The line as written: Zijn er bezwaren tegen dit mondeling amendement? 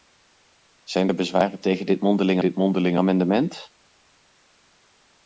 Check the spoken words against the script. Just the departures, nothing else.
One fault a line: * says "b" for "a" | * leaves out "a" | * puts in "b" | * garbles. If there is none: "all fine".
* puts in "dit mondeling"